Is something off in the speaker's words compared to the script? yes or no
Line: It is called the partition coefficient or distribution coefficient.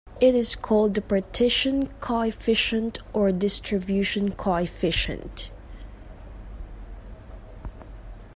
no